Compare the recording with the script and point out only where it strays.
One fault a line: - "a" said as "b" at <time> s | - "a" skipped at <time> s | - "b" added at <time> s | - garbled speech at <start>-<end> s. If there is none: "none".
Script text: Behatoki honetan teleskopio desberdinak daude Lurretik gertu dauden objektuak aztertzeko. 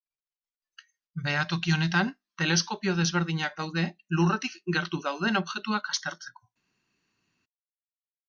none